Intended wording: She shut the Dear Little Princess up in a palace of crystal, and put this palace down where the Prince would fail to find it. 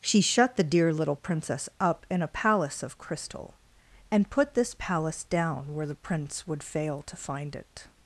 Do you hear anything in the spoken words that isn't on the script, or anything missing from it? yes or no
no